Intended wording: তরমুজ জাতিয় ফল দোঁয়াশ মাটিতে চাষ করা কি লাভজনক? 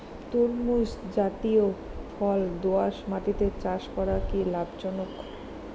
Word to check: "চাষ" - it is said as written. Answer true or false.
true